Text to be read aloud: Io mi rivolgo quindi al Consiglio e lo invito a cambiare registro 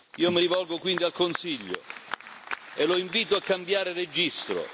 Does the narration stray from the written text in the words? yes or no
no